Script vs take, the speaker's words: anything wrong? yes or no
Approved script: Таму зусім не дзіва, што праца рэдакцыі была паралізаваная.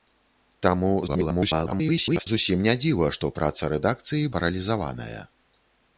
yes